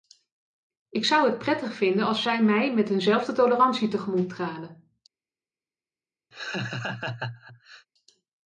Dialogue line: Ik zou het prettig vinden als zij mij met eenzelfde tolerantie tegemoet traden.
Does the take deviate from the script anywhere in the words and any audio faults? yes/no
yes